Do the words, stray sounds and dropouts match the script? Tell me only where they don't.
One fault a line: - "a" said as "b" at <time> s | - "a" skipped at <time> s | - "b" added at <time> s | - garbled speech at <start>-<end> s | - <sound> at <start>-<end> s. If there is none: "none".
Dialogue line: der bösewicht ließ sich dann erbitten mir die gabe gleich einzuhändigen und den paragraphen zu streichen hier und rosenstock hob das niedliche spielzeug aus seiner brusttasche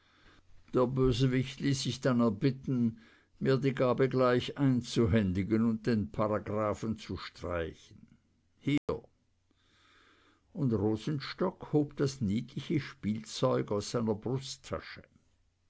- dropout at 8.8-8.9 s